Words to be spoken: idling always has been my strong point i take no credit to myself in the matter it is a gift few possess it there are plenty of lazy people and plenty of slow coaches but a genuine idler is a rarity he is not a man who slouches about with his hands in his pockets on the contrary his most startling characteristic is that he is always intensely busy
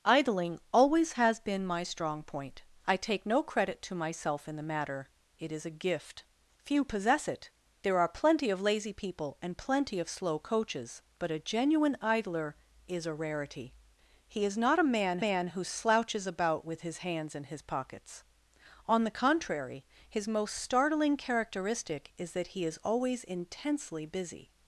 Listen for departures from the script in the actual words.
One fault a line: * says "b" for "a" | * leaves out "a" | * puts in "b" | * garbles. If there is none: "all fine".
* puts in "man"